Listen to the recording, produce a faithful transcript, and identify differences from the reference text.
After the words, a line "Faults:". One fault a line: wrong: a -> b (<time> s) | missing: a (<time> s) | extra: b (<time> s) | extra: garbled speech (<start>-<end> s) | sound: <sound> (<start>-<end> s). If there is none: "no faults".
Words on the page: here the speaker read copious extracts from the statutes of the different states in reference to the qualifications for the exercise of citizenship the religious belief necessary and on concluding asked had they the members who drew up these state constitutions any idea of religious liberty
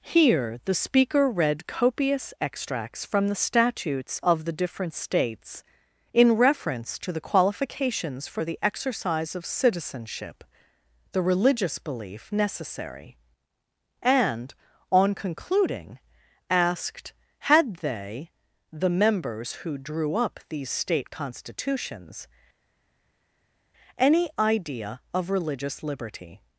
here the speaker read copious extracts from the statutes of the different states in reference to the qualifications for the exercise of citizenship the religious belief necessary and on concluding asked had they the members who drew up these state constitutions any idea of religious liberty
Faults:
no faults